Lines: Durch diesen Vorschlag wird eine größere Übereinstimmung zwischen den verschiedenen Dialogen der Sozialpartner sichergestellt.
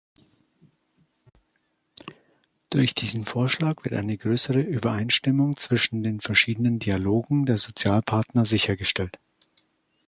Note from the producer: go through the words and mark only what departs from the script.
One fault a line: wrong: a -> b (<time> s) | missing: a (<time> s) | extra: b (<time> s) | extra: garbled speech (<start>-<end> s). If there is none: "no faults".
no faults